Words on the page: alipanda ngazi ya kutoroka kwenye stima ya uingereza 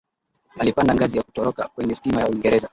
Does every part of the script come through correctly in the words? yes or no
yes